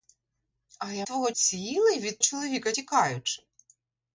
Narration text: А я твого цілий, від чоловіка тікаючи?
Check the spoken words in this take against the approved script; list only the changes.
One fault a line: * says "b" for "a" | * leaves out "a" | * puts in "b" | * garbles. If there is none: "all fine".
all fine